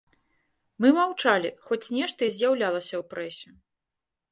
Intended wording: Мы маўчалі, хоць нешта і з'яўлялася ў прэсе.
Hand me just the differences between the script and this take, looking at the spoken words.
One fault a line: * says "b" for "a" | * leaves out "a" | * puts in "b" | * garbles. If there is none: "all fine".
all fine